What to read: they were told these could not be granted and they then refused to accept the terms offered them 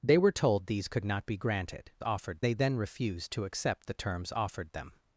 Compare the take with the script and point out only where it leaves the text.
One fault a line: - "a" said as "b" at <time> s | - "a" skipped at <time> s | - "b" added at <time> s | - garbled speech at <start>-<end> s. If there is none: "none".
- "and" said as "offered" at 2.0 s